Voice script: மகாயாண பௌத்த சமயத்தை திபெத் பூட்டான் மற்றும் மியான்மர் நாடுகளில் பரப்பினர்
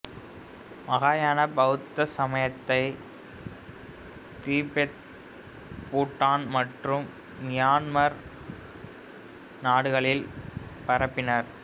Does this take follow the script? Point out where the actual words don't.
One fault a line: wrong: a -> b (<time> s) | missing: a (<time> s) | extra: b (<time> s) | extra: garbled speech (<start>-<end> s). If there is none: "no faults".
no faults